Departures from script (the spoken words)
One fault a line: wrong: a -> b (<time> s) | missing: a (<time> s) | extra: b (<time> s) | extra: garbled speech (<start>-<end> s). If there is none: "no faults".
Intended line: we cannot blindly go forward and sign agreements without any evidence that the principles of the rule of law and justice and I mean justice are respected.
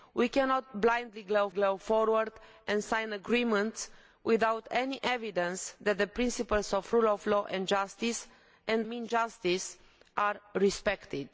extra: go (1.5 s)
missing: I (8.9 s)